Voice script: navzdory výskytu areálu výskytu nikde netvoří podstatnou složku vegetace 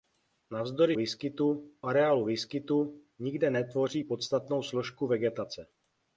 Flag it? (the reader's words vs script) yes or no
no